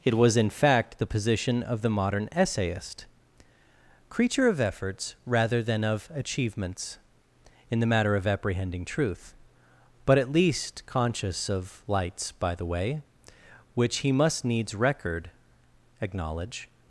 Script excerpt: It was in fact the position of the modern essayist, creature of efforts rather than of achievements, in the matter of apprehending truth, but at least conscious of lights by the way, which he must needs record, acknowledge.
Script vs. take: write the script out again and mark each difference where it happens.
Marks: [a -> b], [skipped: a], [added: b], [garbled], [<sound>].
It was in fact the position of the modern essayist, creature of efforts rather than of achievements, in the matter of apprehending truth, but at least conscious of lights by the way, which he must needs record, acknowledge.